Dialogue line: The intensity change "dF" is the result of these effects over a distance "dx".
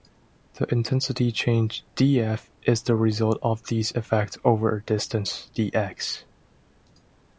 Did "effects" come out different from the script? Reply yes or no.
no